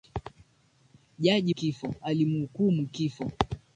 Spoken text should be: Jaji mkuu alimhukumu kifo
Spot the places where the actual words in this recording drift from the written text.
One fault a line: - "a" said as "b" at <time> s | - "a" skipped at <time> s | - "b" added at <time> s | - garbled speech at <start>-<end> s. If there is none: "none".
- "mkuu" said as "kifo" at 1.5 s